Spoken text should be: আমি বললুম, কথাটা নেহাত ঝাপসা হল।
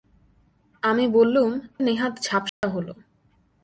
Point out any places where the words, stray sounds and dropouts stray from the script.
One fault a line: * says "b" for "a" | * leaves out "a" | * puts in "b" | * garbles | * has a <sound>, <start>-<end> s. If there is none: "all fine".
* leaves out "কথাটা"
* has a dropout, 2.5-2.6 s